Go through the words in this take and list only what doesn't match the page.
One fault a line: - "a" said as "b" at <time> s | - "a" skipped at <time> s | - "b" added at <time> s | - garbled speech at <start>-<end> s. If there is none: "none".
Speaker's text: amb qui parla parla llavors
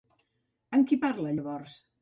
- "parla" skipped at 1.3 s